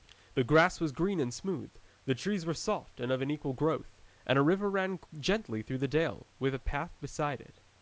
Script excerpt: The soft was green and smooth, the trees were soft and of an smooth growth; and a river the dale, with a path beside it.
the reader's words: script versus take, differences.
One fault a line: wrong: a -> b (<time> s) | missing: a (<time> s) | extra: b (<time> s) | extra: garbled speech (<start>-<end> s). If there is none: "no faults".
wrong: soft -> grass (0.4 s)
wrong: smooth -> equal (3.3 s)
extra: ran gently through (4.7 s)